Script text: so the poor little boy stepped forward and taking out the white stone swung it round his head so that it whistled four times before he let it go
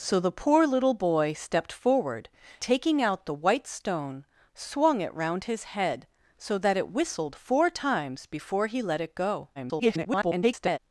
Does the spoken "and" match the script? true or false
false